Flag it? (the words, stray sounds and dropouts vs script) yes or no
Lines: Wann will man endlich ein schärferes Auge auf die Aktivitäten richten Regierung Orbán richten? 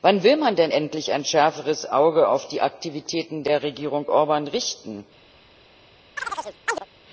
yes